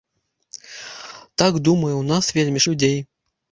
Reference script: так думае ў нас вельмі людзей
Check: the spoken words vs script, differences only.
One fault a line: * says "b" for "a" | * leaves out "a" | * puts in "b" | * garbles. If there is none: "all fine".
all fine